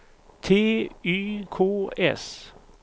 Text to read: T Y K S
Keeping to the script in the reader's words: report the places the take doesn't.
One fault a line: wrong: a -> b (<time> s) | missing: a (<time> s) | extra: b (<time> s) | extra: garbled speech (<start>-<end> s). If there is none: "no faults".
no faults